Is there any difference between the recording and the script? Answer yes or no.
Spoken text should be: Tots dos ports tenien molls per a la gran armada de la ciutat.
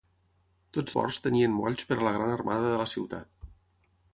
yes